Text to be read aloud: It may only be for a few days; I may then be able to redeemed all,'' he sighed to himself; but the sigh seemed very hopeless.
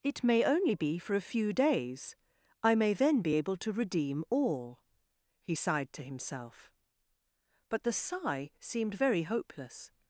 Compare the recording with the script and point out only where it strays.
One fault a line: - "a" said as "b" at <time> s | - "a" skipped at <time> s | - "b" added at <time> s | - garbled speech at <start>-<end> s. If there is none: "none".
- "redeemed" said as "redeem" at 3.7 s